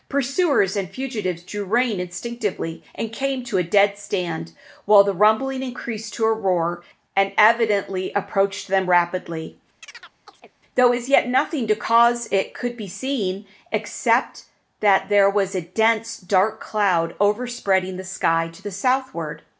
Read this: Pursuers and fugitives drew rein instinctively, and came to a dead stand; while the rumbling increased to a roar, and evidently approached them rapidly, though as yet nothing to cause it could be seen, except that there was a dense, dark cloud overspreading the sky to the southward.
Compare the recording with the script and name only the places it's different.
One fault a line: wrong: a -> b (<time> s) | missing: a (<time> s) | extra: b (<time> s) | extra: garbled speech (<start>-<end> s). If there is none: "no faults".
no faults